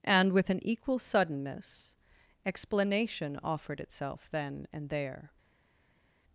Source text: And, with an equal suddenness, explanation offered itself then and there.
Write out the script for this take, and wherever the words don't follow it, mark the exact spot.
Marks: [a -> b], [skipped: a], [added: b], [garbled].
And, with an equal suddenness, explanation offered itself then and there.